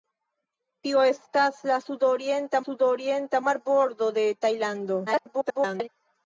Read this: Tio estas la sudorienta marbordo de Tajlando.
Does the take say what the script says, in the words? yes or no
no